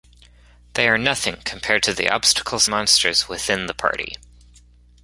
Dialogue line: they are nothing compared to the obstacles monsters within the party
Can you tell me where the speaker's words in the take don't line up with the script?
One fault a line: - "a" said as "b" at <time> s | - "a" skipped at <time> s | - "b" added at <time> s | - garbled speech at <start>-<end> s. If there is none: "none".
none